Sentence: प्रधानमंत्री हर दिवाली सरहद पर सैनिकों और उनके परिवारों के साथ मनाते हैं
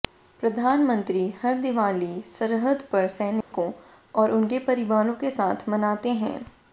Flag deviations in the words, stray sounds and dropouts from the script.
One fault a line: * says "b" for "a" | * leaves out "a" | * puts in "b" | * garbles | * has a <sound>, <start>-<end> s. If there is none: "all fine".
* has a dropout, 3.4-3.5 s